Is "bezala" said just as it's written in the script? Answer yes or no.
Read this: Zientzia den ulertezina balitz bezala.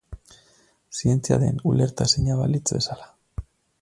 yes